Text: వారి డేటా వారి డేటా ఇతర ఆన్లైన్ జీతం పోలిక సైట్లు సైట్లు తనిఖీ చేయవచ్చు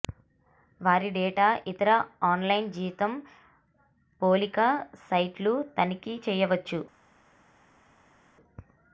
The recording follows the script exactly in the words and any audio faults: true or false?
false